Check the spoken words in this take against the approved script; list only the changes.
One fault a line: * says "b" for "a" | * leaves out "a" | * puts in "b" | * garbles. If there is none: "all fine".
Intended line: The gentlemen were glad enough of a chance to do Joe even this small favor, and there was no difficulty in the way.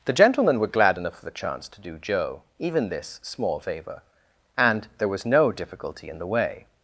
* says "the" for "a"